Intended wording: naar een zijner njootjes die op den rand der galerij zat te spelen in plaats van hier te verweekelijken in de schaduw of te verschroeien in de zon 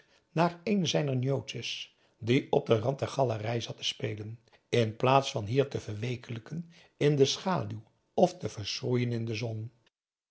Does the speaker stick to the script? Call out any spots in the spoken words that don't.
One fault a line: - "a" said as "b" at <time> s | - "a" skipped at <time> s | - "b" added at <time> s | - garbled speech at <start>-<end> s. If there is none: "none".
none